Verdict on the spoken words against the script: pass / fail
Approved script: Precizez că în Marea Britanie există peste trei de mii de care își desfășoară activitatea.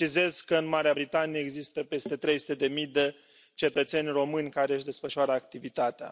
fail